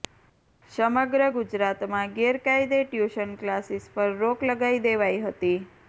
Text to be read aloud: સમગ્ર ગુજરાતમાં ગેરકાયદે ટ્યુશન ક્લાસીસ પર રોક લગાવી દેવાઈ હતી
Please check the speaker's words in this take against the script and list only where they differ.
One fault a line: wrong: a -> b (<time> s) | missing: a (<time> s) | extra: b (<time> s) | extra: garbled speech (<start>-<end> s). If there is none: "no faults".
no faults